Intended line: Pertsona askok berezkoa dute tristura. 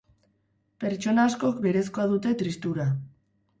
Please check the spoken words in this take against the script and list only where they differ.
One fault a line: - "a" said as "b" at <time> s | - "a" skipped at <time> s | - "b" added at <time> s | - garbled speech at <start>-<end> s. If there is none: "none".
none